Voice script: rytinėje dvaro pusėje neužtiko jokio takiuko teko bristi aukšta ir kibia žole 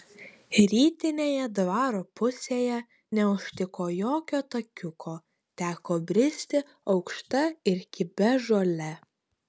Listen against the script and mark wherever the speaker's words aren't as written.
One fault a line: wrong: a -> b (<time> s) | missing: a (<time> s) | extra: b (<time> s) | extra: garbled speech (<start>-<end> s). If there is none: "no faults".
no faults